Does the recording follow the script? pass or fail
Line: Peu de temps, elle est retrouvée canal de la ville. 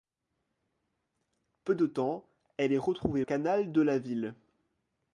pass